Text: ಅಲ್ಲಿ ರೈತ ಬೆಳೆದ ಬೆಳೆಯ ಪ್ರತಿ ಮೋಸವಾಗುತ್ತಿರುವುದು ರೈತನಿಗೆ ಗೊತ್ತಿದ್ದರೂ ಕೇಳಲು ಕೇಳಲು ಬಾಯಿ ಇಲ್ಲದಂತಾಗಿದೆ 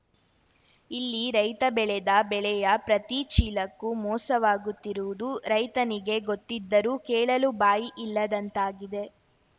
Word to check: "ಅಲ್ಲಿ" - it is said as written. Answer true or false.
false